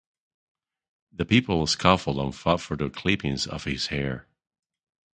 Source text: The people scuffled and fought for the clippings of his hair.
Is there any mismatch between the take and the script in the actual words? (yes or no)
no